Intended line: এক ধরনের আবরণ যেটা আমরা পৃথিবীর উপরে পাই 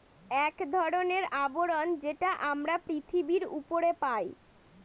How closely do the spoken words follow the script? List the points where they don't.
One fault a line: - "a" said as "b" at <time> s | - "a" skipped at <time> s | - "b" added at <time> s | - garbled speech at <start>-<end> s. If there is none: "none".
none